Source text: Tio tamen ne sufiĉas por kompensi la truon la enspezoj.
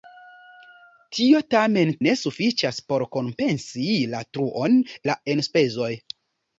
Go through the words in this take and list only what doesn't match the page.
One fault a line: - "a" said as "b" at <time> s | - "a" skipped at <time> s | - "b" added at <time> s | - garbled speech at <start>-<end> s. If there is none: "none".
none